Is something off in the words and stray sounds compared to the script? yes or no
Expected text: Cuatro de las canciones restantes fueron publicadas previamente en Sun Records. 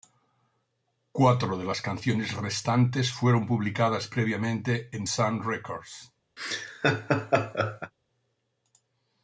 yes